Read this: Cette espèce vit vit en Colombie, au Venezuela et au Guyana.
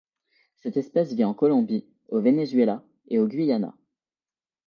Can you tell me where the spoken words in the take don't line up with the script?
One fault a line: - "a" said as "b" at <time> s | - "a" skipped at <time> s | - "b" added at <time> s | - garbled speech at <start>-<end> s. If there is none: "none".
- "vit" skipped at 1.2 s